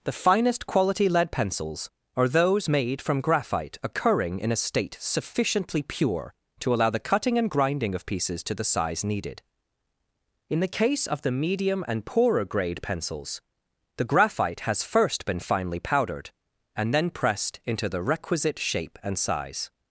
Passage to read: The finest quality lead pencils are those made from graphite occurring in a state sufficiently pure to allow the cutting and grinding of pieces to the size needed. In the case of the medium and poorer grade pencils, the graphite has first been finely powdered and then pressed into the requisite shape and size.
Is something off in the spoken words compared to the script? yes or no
no